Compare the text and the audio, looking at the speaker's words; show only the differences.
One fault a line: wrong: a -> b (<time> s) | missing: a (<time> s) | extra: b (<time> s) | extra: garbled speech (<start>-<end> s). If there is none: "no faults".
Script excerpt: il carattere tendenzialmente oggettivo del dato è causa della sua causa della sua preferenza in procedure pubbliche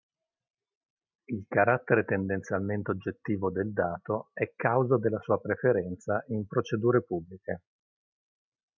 missing: causa della sua (5.4 s)